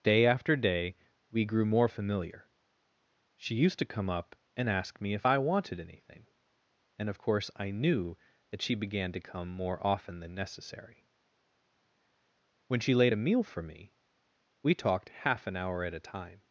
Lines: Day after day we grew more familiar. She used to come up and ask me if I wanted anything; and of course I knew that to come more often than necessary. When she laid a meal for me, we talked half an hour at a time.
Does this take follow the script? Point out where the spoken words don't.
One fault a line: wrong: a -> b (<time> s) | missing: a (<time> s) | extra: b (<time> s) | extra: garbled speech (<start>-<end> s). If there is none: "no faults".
extra: she began (8.6 s)